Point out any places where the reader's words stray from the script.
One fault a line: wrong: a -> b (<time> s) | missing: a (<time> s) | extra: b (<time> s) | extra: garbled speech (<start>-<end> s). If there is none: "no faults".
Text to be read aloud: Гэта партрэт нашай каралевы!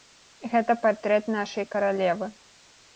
no faults